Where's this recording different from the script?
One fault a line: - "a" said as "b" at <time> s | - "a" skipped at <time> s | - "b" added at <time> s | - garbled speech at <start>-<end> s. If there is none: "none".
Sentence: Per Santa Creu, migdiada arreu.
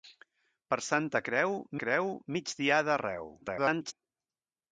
- "Creu" added at 1.8 s
- garbled speech at 3.4-3.9 s